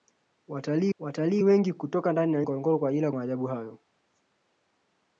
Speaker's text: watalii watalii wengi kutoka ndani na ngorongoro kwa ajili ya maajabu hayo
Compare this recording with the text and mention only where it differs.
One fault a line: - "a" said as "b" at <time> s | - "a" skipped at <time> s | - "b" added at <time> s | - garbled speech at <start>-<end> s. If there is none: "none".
none